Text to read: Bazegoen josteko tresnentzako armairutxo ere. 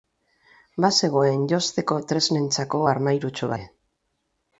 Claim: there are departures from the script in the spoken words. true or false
false